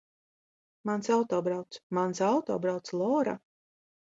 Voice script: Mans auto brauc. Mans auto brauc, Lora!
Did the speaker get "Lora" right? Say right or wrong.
right